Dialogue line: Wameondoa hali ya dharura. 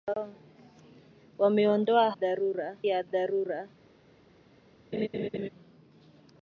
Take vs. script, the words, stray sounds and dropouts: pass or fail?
fail